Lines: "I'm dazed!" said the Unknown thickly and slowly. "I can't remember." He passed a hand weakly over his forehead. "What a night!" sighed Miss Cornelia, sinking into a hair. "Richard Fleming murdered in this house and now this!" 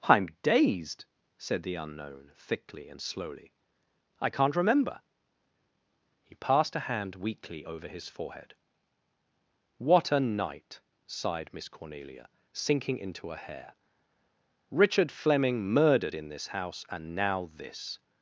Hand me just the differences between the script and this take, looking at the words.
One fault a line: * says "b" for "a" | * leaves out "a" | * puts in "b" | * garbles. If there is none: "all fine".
all fine